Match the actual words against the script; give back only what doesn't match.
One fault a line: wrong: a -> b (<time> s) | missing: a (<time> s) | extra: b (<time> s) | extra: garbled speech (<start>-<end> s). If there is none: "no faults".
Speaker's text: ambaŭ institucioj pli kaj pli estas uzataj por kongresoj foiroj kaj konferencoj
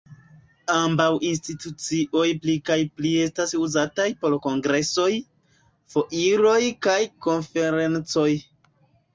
no faults